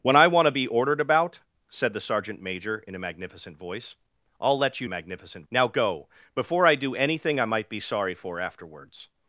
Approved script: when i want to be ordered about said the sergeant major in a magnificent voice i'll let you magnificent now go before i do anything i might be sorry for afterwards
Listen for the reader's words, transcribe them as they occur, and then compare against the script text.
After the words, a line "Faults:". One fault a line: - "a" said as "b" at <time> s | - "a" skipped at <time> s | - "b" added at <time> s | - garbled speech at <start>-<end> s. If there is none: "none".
when i want to be ordered about said the sergeant major in a magnificent voice i'll let you magnificent now go before i do anything i might be sorry for afterwards
Faults:
none